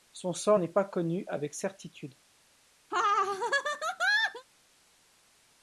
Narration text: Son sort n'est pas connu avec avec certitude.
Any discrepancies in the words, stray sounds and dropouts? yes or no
yes